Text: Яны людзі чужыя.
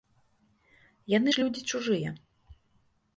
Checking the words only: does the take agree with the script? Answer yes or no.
no